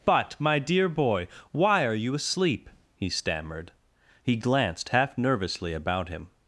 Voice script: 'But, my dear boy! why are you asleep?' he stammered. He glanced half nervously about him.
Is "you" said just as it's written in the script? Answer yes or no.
yes